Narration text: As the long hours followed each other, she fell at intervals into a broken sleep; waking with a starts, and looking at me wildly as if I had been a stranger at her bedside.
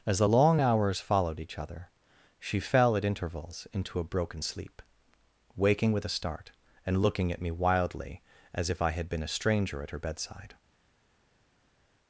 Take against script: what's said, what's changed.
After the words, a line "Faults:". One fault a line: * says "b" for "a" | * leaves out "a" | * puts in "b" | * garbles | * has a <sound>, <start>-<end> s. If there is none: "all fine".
As the long hours followed each other, she fell at intervals into a broken sleep; waking with a start, and looking at me wildly as if I had been a stranger at her bedside.
Faults:
* says "start" for "starts"